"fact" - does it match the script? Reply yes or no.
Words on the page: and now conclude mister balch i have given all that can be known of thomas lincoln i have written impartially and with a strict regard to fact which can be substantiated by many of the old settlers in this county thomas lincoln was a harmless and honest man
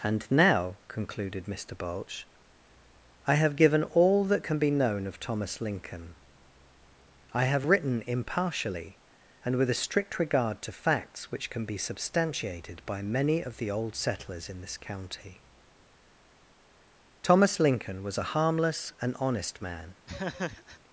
no